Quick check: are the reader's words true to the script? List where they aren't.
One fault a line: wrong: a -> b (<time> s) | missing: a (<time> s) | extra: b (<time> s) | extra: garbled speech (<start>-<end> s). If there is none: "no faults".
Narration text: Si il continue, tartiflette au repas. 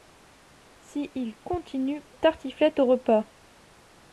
no faults